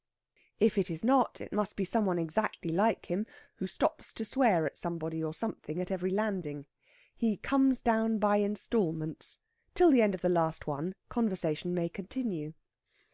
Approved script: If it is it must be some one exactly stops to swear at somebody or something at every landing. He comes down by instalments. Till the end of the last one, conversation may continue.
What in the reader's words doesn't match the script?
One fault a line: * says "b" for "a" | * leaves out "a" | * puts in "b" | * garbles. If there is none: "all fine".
* puts in "not"
* puts in "like him who"